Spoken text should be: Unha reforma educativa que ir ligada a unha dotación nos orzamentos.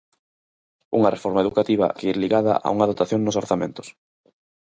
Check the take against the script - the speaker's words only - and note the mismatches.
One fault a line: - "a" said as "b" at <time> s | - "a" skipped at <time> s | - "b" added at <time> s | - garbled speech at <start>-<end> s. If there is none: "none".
none